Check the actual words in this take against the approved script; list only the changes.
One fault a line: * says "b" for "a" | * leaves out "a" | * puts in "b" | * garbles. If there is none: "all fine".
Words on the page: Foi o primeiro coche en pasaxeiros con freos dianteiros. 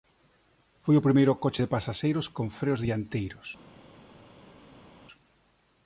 * says "de" for "en"